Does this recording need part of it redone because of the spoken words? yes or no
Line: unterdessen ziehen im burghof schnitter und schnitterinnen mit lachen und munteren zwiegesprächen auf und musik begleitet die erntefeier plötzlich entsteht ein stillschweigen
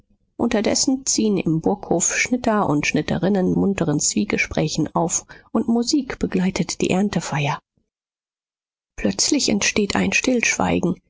yes